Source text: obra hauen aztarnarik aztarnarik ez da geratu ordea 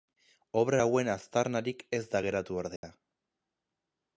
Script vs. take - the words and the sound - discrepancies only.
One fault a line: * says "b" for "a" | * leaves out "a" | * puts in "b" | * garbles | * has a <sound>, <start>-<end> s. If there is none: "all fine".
* leaves out "aztarnarik"
* has a dropout, 2.8-2.8 s